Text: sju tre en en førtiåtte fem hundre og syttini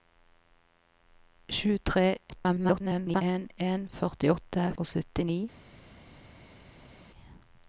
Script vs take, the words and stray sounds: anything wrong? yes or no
yes